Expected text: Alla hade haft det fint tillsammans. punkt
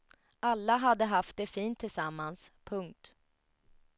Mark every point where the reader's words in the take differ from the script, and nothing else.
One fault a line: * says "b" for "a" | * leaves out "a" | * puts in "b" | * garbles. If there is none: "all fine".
all fine